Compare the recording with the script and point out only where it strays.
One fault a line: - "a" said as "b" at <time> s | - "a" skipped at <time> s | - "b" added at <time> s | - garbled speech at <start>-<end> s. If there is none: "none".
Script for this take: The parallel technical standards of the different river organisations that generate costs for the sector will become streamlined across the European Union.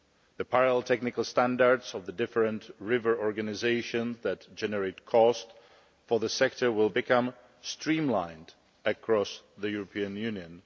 none